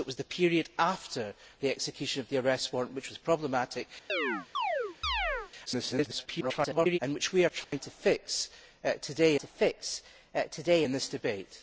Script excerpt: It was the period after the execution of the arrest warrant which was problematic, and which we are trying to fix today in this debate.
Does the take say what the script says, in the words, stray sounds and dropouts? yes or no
no